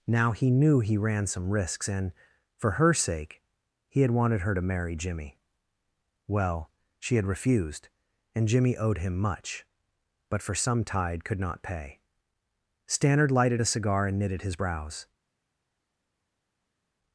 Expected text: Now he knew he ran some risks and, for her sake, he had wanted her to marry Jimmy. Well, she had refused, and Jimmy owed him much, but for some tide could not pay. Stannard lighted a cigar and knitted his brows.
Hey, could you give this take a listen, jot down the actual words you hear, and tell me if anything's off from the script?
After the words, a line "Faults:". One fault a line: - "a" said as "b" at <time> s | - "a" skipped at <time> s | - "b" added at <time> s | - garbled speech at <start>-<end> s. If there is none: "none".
Now he knew he ran some risks and, for her sake, he had wanted her to marry Jimmy. Well, she had refused, and Jimmy owed him much, but for some tide could not pay. Stannard lighted a cigar and knitted his brows.
Faults:
none